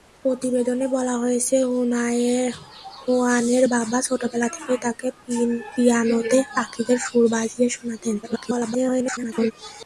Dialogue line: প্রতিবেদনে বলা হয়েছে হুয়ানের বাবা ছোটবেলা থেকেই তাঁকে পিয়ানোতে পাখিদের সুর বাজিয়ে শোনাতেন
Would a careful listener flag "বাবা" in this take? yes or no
no